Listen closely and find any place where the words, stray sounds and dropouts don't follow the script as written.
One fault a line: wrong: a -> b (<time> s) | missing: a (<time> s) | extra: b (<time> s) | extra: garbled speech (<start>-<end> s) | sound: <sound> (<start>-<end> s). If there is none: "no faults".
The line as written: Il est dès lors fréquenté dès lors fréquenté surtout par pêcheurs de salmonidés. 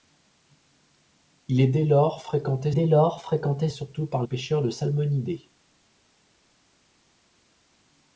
no faults